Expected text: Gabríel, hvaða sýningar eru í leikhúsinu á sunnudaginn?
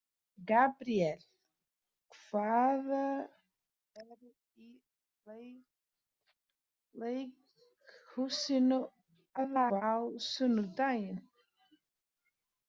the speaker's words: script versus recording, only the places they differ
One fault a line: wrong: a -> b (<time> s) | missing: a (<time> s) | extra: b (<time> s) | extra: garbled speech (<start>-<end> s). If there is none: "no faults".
missing: sýningar (3.0 s)
extra: garbled speech (9.4-9.8 s)